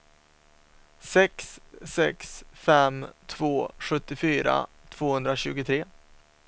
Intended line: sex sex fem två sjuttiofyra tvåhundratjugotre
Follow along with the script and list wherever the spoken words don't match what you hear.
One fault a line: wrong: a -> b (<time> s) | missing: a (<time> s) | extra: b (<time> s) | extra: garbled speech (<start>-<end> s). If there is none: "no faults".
no faults